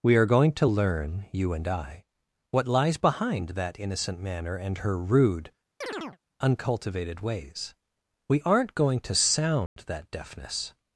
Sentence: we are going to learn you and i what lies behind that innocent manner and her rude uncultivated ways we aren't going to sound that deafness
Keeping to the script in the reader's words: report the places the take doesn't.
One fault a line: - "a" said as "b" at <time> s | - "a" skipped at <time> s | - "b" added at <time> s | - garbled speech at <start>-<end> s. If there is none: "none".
none